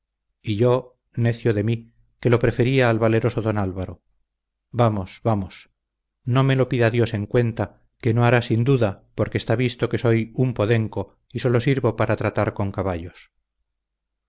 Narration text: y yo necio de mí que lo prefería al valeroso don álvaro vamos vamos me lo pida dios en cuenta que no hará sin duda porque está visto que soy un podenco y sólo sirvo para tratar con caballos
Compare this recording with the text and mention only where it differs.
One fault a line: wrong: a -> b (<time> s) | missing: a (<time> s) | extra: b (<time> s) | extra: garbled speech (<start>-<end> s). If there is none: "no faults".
extra: no (6.2 s)